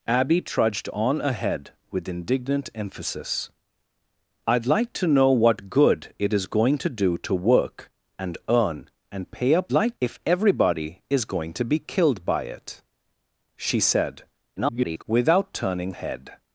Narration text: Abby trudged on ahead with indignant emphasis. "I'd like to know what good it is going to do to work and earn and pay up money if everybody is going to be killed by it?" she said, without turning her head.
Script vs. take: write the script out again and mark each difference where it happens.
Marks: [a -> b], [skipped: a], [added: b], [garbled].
Abby trudged on ahead with indignant emphasis. "I'd like to know what good it is going to do to work and earn and pay up [money -> like] if everybody is going to be killed by it?" she said, [garbled] without turning [skipped: her] head.